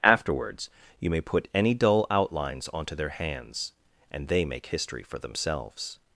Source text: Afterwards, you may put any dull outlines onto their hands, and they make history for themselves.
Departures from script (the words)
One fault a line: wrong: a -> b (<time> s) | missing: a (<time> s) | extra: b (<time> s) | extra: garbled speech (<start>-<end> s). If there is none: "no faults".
no faults